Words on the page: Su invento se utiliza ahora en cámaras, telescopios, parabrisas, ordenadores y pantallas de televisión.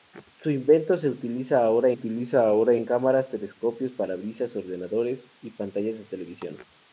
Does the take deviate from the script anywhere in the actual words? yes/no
yes